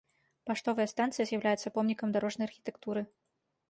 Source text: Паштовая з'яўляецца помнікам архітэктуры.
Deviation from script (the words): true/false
true